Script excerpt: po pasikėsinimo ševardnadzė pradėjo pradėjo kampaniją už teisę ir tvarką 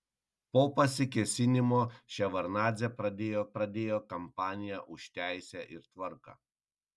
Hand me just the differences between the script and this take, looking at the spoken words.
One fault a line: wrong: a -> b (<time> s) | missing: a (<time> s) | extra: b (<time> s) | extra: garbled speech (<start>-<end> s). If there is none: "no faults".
no faults